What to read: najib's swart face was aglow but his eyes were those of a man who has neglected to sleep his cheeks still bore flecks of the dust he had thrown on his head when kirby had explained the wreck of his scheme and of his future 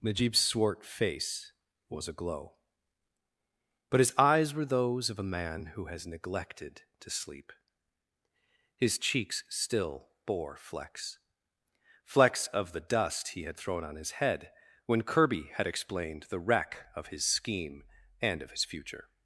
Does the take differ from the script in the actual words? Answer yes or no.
yes